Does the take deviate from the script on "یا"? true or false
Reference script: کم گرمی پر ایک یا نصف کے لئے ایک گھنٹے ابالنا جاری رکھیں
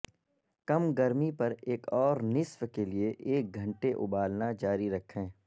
true